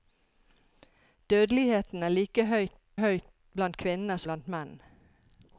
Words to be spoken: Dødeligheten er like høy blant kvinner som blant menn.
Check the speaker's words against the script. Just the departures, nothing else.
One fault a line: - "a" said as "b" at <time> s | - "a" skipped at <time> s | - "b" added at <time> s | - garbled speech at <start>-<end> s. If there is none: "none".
- "høy" added at 3.0 s
- "som" skipped at 4.2 s